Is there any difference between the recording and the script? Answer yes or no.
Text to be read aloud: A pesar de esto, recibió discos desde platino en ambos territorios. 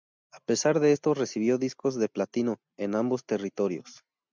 yes